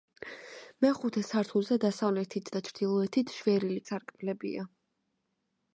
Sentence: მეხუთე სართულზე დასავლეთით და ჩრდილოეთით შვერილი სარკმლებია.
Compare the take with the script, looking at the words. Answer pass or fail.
pass